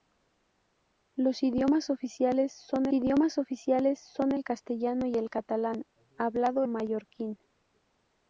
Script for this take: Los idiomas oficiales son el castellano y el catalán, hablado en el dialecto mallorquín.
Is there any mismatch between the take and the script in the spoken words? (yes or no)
yes